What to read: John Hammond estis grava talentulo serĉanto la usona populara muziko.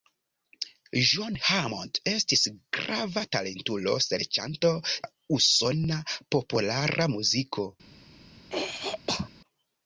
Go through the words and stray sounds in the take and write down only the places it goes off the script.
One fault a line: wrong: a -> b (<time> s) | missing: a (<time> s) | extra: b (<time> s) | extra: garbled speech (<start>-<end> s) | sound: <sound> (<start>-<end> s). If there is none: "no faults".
sound: throat clearing (8.5-9.3 s)